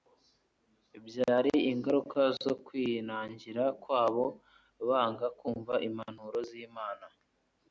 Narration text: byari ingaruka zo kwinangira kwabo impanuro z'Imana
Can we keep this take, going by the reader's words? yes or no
no